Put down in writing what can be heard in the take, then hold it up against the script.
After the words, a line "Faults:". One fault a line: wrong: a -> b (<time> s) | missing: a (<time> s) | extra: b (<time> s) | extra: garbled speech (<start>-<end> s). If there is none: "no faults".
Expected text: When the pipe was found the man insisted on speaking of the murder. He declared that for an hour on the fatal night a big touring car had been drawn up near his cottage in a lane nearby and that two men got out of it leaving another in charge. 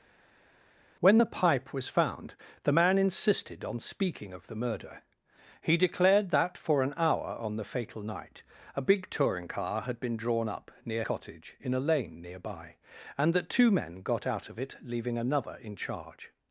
When the pipe was found the man insisted on speaking of the murder. He declared that for an hour on the fatal night a big touring car had been drawn up near cottage in a lane nearby and that two men got out of it leaving another in charge.
Faults:
missing: his (11.0 s)